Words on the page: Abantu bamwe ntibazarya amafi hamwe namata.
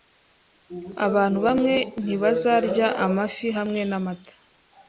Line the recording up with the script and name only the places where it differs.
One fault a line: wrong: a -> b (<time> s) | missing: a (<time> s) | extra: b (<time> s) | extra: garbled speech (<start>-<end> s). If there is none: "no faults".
no faults